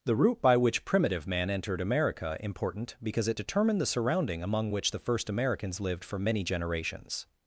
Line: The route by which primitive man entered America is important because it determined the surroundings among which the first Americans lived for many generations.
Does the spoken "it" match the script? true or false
true